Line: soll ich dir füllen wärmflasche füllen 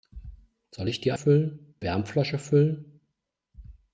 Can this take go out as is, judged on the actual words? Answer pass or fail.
pass